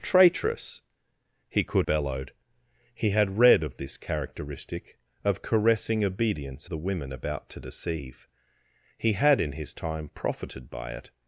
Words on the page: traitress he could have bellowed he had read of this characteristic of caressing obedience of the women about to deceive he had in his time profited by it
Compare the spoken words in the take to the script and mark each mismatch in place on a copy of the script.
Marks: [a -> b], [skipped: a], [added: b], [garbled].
traitress he could [skipped: have] bellowed he had read of this characteristic of caressing obedience [skipped: of] the women about to deceive he had in his time profited by it